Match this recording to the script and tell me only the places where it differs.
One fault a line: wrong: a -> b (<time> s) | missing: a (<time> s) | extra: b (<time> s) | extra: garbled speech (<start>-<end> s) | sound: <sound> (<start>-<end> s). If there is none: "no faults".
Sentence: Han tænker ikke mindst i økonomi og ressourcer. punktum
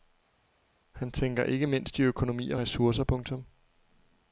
no faults